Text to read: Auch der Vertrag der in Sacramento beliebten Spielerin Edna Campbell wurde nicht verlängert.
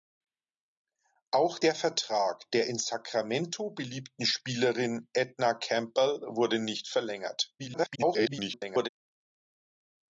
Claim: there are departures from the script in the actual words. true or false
true